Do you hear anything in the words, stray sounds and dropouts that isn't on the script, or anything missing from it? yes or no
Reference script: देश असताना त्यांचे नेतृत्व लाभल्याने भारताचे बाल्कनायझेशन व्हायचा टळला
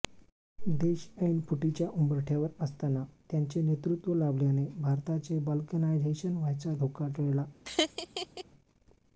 yes